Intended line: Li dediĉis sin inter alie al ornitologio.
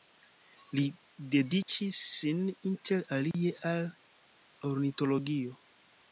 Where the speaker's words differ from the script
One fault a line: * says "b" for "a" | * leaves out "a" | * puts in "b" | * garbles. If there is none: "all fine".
all fine